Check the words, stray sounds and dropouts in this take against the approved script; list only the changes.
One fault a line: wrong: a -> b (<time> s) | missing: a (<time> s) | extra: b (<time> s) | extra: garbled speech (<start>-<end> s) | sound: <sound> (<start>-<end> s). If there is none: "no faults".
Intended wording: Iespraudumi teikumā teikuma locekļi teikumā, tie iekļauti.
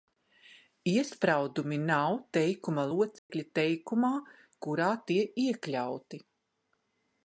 wrong: teikumā -> nav (1.8 s)
sound: dropout (3.2-3.3 s)
extra: kurā (4.7 s)